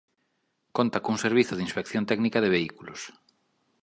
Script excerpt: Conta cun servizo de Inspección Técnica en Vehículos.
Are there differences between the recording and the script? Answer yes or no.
yes